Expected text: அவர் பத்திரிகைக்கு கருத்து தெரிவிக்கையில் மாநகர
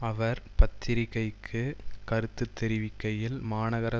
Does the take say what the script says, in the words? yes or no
yes